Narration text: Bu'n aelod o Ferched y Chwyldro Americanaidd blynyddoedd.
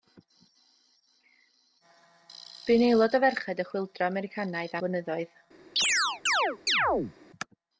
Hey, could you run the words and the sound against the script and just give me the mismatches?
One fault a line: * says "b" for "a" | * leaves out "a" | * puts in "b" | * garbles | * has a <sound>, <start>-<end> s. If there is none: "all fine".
* has a chirp, 5.8-7.1 s